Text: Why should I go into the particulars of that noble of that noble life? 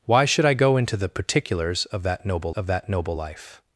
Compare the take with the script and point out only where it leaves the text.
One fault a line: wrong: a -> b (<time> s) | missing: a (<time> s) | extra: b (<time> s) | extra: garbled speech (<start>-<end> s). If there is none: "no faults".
no faults